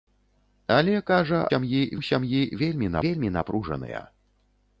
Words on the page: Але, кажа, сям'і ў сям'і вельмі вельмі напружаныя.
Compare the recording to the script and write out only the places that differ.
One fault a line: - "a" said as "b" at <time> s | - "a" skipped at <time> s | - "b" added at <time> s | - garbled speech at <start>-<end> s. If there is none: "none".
none